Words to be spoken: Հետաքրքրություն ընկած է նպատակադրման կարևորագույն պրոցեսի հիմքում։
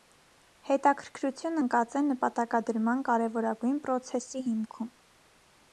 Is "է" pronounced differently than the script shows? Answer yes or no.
no